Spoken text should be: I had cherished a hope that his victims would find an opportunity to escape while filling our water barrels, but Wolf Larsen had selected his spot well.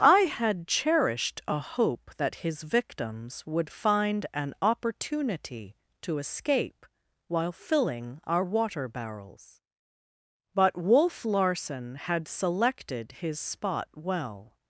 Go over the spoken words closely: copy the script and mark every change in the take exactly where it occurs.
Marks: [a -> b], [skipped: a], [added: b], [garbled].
I had cherished a hope that his victims would find an opportunity to escape while filling our water barrels, but Wolf Larsen had selected his spot well.